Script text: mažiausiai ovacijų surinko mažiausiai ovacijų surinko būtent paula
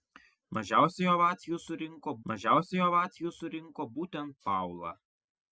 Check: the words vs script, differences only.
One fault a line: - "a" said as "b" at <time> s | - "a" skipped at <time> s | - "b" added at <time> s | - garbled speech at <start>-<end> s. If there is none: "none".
none